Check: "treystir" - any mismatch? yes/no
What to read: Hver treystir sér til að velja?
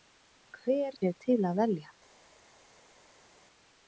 yes